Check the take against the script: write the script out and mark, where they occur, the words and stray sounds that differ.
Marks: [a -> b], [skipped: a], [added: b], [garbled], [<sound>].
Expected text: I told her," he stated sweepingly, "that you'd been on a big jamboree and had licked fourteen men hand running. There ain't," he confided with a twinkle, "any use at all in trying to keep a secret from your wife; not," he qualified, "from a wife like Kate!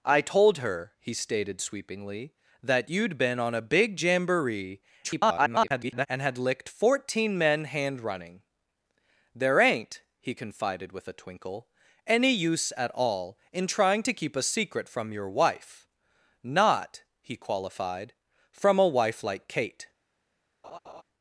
I told her," he stated sweepingly, "that you'd been on a big jamboree [garbled] and had licked fourteen men hand running. There ain't," he confided with a twinkle, "any use at all in trying to keep a secret from your wife; not," he qualified, "from a wife like Kate! [laugh]